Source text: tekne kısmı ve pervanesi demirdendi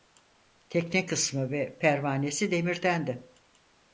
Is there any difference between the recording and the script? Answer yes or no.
no